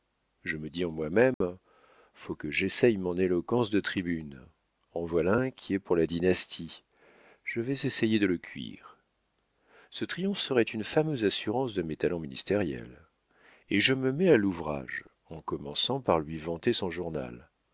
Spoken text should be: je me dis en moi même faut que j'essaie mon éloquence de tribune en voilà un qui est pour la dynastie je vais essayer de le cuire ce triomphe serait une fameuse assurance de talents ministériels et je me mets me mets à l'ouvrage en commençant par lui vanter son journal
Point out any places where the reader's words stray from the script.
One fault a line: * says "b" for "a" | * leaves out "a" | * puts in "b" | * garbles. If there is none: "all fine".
* puts in "mes"
* leaves out "me mets"